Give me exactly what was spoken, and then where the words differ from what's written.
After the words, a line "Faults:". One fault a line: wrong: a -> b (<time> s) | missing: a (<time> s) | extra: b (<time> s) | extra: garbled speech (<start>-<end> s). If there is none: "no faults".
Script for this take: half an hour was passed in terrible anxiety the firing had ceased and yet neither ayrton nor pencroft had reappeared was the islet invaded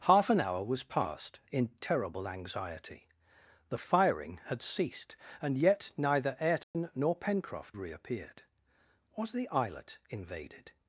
half an hour was passed in terrible anxiety the firing had ceased and yet neither ayrton nor pencroft reappeared was the islet invaded
Faults:
missing: had (7.8 s)